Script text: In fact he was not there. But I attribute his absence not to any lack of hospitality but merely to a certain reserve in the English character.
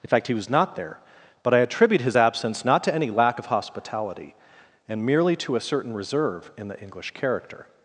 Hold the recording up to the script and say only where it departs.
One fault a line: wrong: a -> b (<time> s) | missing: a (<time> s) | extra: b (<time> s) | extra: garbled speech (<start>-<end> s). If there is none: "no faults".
wrong: but -> and (4.9 s)